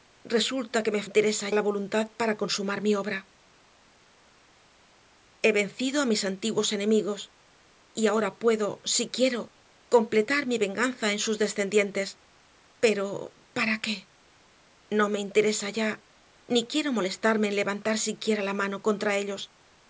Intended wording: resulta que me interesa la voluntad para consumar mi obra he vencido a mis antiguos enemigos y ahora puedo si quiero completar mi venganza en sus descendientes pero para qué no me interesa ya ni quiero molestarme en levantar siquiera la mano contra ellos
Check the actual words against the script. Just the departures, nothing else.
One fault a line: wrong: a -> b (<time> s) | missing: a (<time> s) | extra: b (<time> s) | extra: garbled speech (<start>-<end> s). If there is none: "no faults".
no faults